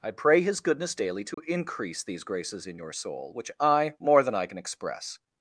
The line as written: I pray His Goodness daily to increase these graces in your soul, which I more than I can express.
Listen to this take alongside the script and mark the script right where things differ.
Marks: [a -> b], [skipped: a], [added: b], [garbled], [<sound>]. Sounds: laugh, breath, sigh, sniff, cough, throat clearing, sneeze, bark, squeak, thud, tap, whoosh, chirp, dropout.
I pray His Goodness daily to [dropout] increase these graces in your soul, which I more than I can express.